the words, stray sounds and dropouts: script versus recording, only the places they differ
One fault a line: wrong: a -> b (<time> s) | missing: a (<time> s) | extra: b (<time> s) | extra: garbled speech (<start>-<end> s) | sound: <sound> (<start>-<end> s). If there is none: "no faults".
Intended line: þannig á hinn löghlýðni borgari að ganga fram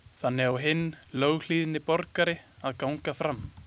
no faults